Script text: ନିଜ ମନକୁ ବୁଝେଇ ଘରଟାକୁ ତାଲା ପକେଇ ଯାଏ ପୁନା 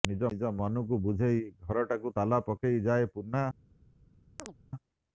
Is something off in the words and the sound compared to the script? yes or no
yes